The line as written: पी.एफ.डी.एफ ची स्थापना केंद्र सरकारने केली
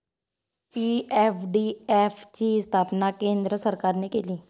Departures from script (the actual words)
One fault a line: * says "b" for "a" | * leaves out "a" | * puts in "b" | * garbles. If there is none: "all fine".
all fine